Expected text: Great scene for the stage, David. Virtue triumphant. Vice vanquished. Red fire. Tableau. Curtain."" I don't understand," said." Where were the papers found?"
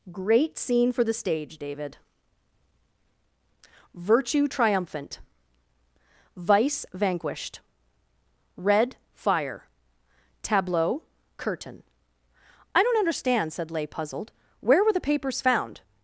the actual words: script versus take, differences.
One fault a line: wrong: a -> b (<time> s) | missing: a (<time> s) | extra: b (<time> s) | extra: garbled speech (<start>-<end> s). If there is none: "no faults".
extra: Leigh puzzled (13.7 s)